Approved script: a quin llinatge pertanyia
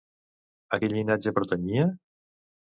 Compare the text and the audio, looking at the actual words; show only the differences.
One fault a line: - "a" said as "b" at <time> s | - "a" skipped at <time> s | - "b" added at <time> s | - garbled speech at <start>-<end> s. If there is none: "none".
none